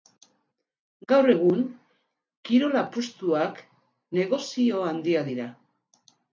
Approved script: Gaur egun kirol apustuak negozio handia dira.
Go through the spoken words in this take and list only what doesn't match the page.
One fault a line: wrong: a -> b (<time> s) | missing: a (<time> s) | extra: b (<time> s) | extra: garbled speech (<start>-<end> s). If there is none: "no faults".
no faults